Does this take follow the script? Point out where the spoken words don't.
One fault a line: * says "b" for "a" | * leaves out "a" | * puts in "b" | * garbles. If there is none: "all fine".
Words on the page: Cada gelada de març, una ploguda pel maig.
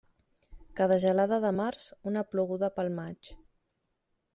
all fine